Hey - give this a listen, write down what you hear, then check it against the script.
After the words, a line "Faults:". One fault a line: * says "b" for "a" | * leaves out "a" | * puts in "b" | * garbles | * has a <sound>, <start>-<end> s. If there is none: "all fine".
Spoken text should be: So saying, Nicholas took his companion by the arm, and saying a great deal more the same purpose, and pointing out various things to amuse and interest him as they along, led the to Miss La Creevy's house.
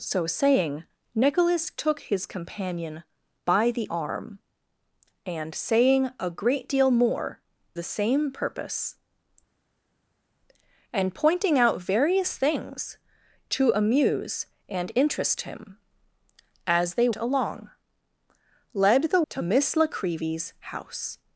So saying, Nicholas took his companion by the arm, and saying a great deal more the same purpose, and pointing out various things to amuse and interest him as they along, led the to Miss La Creevy's house.
Faults:
all fine